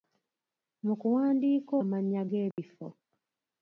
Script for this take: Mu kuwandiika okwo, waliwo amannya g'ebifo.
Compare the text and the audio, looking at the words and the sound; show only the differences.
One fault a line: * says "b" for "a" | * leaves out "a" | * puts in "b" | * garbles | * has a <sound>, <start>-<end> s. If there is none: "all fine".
* leaves out "okwo waliwo"
* has a dropout, 2.5-2.6 s